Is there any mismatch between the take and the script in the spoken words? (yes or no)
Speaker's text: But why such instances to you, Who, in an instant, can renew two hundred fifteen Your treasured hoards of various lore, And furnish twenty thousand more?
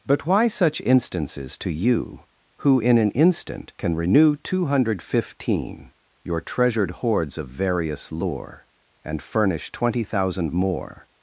no